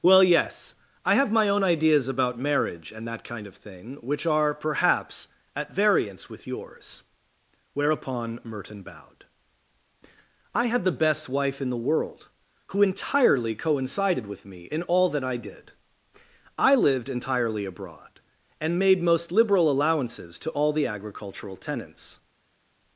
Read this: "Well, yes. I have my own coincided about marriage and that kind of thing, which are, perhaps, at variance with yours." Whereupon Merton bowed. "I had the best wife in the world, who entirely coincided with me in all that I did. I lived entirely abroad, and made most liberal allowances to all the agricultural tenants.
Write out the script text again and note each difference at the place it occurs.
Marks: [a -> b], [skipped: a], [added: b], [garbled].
"Well, yes. I have my own [coincided -> ideas] about marriage and that kind of thing, which are, perhaps, at variance with yours." Whereupon Merton bowed. "I had the best wife in the world, who entirely coincided with me in all that I did. I lived entirely abroad, and made most liberal allowances to all the agricultural tenants.